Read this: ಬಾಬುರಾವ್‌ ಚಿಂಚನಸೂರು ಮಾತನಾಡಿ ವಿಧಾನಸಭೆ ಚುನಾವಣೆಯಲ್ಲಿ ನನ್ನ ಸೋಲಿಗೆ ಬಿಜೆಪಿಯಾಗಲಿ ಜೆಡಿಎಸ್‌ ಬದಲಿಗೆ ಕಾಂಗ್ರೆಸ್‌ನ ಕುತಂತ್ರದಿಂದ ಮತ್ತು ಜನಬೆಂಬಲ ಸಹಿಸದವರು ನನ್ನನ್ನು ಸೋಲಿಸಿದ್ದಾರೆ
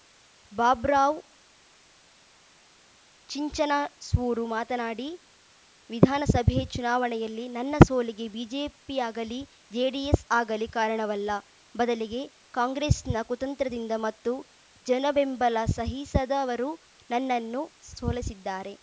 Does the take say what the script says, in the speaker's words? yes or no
no